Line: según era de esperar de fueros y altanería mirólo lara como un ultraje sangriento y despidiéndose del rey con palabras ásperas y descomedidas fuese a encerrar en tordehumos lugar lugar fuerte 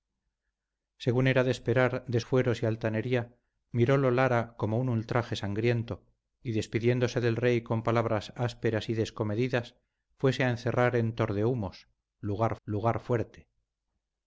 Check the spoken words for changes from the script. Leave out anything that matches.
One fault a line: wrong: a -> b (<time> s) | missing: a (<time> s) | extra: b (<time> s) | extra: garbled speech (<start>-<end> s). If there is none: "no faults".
no faults